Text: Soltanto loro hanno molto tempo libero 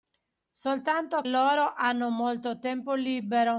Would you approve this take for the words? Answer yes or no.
yes